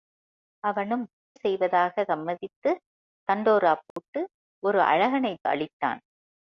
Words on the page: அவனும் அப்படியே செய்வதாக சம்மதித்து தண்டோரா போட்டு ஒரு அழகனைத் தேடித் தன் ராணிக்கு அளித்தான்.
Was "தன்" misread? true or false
true